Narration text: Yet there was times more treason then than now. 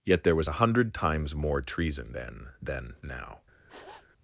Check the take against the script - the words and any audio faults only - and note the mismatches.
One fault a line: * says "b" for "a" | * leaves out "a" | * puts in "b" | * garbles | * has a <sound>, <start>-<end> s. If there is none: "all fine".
* puts in "a hundred"
* has a sniff, 3.7-4.1 s